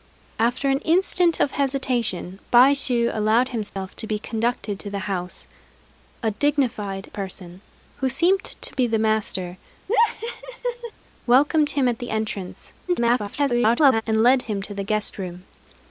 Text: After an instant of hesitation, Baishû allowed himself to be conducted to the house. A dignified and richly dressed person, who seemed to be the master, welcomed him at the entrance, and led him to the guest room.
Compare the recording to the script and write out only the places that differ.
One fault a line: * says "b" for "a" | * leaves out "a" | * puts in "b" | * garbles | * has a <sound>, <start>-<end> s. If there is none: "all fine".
* has a dropout, 3.7-3.8 s
* leaves out "and richly dressed"
* has a laugh, 9.9-10.9 s
* garbles